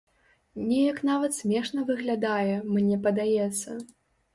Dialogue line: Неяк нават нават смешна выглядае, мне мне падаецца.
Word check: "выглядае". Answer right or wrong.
right